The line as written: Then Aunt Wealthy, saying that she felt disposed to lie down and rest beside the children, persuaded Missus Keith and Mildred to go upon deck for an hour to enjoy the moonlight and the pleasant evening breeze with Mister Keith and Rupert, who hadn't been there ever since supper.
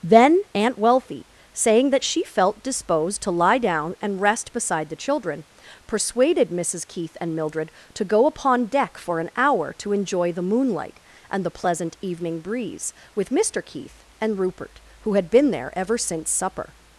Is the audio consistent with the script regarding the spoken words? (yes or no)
no